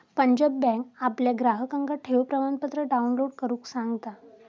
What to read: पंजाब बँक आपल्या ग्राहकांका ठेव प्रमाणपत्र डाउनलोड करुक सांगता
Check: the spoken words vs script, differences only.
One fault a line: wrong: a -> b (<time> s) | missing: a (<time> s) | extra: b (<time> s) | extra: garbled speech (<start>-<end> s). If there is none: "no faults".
no faults